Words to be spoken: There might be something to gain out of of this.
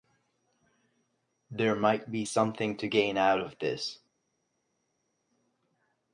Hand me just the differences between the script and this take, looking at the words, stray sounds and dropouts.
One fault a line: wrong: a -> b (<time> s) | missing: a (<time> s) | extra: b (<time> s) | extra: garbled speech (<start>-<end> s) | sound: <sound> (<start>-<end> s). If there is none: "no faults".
missing: of (3.6 s)